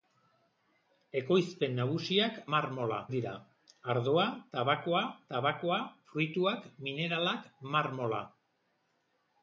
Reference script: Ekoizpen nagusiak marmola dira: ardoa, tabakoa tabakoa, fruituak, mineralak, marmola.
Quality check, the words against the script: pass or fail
pass